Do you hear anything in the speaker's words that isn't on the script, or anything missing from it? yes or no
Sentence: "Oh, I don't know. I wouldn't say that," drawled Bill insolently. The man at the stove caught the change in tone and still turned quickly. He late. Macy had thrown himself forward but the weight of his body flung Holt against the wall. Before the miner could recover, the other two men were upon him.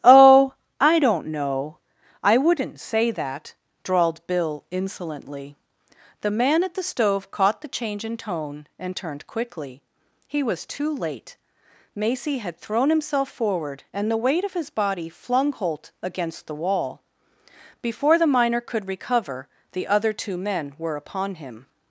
yes